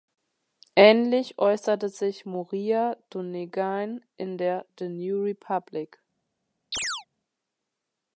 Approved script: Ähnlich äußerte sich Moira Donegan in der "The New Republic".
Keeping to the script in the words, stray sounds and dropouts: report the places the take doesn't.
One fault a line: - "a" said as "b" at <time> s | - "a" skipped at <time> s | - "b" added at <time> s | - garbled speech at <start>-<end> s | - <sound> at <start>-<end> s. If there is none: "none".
- chirp at 6.7-7.1 s